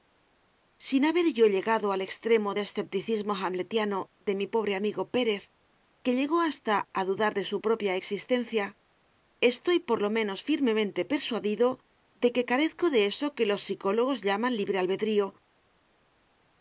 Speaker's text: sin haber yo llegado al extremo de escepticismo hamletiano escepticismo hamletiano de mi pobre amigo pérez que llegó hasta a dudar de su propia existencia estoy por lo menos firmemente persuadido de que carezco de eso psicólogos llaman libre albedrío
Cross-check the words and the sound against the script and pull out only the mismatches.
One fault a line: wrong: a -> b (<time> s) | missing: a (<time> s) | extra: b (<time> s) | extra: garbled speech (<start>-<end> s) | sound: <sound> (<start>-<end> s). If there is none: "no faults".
missing: escepticismo hamletiano (4.1 s)
extra: que los (13.3 s)